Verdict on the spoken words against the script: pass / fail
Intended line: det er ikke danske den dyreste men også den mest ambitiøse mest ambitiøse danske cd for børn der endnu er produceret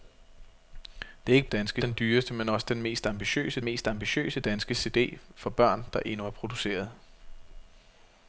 pass